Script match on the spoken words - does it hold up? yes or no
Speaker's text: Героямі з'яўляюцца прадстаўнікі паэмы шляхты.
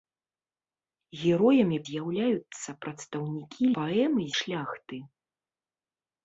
yes